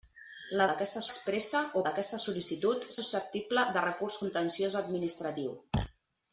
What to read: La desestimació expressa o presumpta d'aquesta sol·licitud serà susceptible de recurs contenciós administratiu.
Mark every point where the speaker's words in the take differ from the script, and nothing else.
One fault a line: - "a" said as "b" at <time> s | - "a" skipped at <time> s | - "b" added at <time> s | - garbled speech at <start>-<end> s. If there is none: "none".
- "desestimació" said as "d'aquesta" at 0.7 s
- "presumpta" skipped at 1.8 s
- "serà" skipped at 2.9 s